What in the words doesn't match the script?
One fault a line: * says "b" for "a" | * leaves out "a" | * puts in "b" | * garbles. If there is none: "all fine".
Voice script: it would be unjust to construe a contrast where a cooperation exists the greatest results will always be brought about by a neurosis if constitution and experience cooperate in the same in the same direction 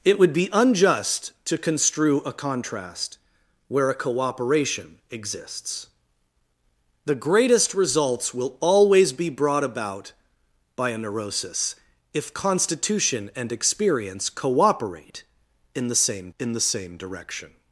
all fine